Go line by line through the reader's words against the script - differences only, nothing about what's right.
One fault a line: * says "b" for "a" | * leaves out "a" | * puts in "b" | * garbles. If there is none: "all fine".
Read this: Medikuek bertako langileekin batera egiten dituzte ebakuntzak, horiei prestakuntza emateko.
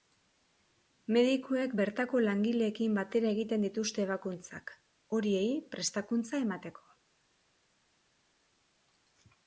all fine